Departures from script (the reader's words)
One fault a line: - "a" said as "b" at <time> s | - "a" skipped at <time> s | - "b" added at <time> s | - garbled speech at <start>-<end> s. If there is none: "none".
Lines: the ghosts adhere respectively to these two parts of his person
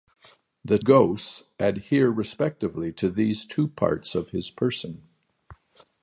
none